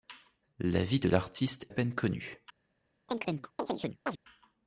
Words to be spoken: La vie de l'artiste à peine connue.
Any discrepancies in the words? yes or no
no